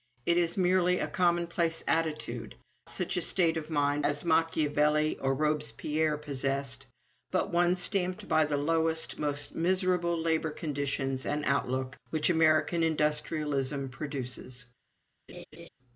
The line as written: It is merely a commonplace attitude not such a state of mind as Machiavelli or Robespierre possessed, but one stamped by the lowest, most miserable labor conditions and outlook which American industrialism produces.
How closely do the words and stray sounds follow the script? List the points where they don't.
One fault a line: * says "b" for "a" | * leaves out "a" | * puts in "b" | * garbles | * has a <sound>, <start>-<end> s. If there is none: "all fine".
* leaves out "not"
* has a laugh, 15.3-15.7 s